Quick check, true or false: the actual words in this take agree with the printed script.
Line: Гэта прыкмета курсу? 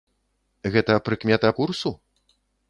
true